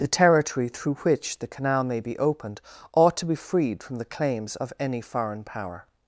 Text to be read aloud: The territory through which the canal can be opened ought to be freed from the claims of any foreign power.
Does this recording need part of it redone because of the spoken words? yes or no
yes